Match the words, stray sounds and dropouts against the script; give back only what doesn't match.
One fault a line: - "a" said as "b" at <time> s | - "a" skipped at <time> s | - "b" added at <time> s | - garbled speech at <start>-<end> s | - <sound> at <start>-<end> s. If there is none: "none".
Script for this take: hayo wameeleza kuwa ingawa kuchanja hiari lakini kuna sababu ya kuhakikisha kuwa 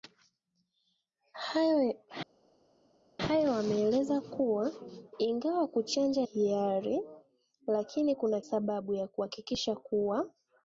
none